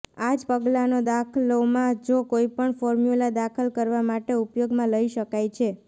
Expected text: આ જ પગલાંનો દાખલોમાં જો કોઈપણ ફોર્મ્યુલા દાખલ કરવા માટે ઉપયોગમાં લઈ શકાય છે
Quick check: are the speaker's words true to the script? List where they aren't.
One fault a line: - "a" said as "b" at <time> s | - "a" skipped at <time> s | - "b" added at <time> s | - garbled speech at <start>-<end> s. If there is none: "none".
none